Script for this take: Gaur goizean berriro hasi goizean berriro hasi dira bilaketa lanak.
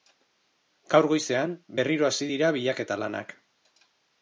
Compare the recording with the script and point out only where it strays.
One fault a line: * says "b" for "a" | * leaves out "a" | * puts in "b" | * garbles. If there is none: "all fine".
* leaves out "goizean berriro hasi"